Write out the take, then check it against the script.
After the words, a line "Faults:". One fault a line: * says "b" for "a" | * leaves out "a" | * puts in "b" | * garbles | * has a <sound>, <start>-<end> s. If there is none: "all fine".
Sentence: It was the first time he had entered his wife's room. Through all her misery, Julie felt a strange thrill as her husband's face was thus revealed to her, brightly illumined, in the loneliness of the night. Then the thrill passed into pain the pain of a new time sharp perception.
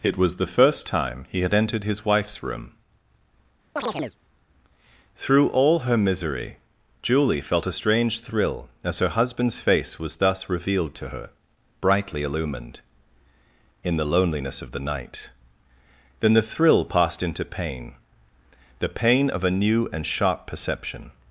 It was the first time he had entered his wife's room. Through all her misery, Julie felt a strange thrill as her husband's face was thus revealed to her, brightly illumined, in the loneliness of the night. Then the thrill passed into pain the pain of a new and sharp perception.
Faults:
* has a chirp, 3.8-4.2 s
* says "and" for "time"